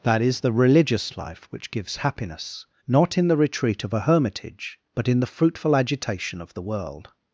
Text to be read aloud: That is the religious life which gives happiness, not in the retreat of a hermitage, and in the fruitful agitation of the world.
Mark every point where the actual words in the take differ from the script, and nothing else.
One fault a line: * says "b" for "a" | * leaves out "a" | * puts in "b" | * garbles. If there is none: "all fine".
* says "but" for "and"